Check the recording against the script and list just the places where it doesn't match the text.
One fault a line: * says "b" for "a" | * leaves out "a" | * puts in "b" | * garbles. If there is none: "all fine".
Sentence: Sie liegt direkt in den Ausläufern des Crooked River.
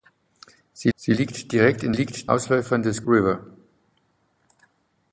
* puts in "sie"
* says "liegt" for "den"
* leaves out "Crooked"